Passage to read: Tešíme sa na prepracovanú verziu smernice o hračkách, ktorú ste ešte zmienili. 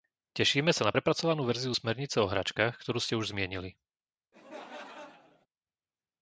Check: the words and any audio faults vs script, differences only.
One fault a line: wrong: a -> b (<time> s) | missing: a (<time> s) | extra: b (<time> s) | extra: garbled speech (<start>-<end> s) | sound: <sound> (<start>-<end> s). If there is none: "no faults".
wrong: ešte -> už (3.1 s)
sound: laugh (4.3-5.5 s)